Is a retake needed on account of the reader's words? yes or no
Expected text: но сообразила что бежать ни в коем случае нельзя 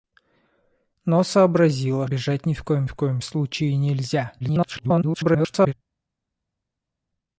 yes